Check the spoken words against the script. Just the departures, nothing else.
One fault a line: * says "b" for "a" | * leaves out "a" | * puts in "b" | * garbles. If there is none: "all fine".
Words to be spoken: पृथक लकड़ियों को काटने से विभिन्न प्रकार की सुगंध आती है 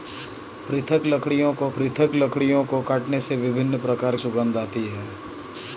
* puts in "पृथक लकड़ियों को"
* leaves out "की"